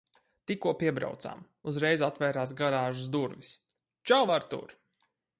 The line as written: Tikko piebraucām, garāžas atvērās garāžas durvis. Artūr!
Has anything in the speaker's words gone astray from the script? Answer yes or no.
yes